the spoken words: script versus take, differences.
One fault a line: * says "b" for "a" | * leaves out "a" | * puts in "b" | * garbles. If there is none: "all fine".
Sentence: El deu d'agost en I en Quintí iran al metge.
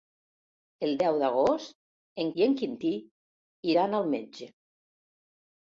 all fine